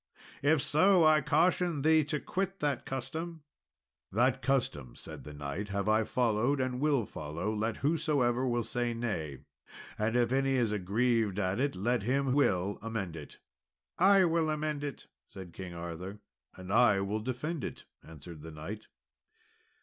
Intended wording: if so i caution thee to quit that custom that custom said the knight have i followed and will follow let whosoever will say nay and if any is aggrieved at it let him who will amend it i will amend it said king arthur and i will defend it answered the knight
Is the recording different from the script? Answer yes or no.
yes